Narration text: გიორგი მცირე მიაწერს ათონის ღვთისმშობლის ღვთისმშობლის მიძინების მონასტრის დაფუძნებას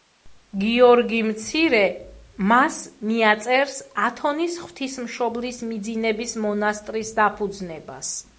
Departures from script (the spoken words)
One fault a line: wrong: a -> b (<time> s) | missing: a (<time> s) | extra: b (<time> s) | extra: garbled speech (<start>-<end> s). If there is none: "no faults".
extra: მას (2.5 s)
missing: ღვთისმშობლის (5.6 s)